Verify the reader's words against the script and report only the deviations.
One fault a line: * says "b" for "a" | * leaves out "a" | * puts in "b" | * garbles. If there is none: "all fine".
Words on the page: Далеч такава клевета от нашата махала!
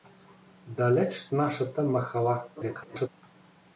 * leaves out "такава клевета от"
* garbles